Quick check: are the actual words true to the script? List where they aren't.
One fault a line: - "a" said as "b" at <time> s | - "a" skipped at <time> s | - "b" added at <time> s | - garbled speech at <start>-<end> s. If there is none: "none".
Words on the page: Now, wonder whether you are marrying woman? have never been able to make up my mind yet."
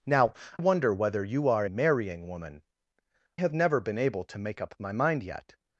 none